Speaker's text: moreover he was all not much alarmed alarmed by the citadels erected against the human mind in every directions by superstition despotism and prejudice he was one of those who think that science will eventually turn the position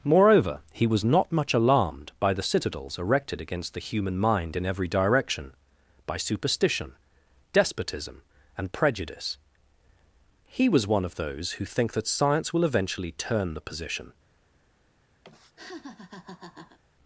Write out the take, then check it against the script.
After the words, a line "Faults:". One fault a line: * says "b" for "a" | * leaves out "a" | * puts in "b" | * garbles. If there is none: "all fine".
moreover he was not much alarmed by the citadels erected against the human mind in every direction by superstition despotism and prejudice he was one of those who think that science will eventually turn the position
Faults:
* leaves out "all"
* leaves out "alarmed"
* says "direction" for "directions"